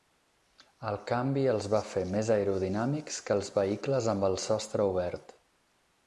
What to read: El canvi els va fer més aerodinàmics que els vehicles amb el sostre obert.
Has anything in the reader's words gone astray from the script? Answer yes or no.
no